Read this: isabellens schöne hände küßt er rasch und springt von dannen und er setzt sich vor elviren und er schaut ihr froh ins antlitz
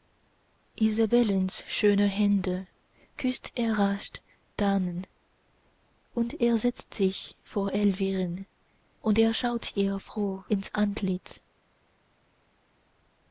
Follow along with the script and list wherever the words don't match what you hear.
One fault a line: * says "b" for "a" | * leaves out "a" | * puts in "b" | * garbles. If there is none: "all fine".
* leaves out "und springt von"